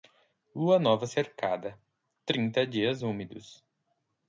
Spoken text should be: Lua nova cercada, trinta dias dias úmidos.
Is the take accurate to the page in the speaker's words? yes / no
no